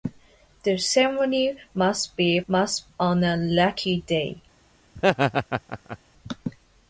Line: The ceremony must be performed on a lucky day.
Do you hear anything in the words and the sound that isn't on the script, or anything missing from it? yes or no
yes